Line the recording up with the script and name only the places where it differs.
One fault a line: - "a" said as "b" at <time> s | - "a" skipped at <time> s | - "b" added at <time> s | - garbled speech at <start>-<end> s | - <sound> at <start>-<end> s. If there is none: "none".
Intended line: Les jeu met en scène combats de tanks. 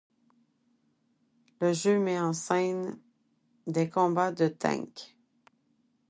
- "Les" said as "Le" at 1.6 s
- "des" added at 3.7 s